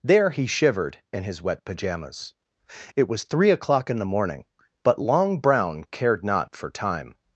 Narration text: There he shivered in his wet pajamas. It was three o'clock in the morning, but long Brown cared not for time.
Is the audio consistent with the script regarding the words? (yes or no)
yes